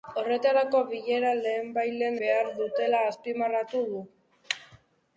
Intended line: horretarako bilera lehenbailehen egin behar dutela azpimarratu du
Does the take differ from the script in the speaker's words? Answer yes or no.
yes